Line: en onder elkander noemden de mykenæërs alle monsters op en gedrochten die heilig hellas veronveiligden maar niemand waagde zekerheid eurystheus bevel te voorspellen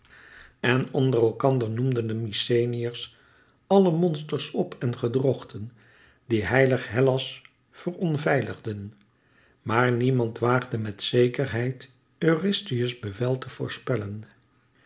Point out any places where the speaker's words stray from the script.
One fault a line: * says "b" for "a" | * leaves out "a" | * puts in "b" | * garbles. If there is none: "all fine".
* puts in "met"